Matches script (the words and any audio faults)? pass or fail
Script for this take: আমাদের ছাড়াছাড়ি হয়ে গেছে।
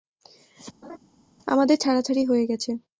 fail